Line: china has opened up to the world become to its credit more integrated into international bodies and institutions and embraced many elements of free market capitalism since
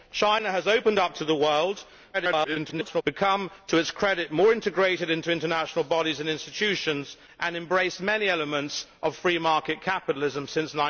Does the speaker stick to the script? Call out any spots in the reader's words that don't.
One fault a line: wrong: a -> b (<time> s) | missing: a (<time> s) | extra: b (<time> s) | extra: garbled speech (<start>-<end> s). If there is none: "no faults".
extra: garbled speech (2.1-3.0 s)